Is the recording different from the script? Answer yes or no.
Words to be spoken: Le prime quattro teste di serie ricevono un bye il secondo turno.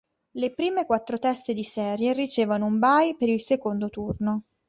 yes